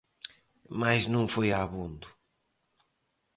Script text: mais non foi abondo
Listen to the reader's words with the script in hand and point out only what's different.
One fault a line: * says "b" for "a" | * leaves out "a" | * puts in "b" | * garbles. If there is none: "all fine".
all fine